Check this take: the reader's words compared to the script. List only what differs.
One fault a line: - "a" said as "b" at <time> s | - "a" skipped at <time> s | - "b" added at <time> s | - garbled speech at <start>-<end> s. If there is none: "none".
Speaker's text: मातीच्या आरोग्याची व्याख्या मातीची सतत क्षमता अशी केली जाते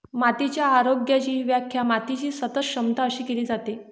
none